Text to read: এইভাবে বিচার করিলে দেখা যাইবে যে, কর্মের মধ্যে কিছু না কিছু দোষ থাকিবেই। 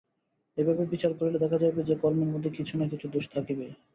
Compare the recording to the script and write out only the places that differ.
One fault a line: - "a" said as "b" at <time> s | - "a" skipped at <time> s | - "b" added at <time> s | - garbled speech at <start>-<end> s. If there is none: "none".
none